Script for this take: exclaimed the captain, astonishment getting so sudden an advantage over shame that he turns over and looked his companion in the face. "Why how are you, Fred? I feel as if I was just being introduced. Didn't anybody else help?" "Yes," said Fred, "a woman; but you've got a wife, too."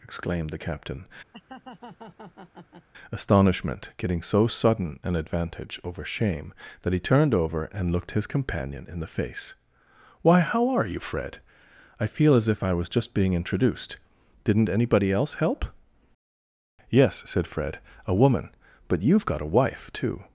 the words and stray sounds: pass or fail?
fail